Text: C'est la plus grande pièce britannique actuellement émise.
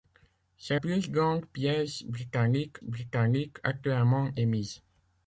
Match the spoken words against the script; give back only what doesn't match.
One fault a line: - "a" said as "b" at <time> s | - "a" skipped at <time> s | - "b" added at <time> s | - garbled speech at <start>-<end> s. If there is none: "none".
- "la" skipped at 0.8 s
- "britannique" added at 2.8 s